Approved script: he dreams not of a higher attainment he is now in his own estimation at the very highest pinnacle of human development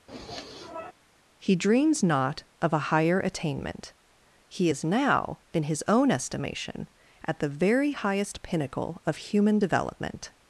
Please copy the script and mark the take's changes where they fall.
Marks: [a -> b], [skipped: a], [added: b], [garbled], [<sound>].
[sniff] he dreams not of a higher attainment he is now in his own estimation at the very highest pinnacle of human development